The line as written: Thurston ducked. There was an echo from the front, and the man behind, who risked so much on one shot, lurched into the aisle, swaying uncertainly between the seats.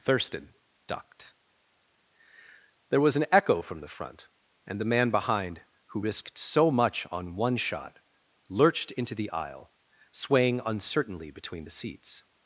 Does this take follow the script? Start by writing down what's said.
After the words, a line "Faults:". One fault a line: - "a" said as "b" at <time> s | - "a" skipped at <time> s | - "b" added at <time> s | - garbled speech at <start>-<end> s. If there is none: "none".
Thurston ducked. There was an echo from the front, and the man behind, who risked so much on one shot, lurched into the aisle, swaying uncertainly between the seats.
Faults:
none